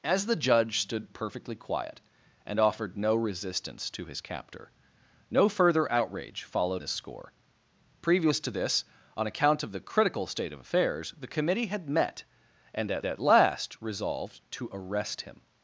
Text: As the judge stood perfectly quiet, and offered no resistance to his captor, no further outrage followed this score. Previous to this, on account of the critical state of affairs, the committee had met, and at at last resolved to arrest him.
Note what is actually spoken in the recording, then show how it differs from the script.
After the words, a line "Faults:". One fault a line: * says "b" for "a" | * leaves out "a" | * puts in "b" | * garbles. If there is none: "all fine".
As the judge stood perfectly quiet, and offered no resistance to his captor, no further outrage followed this score. Previous to this, on account of the critical state of affairs, the committee had met, and at at last resolved to arrest him.
Faults:
all fine